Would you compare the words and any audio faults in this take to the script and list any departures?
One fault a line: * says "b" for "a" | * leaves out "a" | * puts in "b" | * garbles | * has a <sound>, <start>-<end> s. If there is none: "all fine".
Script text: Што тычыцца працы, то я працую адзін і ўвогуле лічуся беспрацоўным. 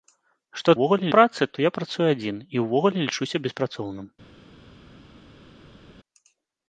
* says "ўвогуле" for "тычыцца"